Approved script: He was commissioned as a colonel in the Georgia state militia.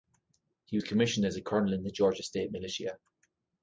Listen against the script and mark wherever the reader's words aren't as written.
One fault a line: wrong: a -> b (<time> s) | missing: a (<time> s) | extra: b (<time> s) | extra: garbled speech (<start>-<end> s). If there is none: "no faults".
no faults